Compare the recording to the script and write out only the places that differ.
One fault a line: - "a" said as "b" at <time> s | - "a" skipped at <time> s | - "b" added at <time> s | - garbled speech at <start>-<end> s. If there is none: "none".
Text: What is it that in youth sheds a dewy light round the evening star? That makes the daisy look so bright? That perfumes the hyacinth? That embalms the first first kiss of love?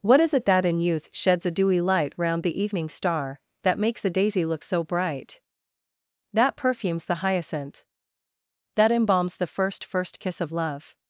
none